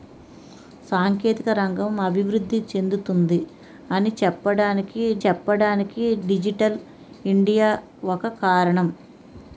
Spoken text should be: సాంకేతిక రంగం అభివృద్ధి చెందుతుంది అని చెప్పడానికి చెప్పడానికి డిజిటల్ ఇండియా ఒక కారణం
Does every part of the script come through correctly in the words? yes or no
yes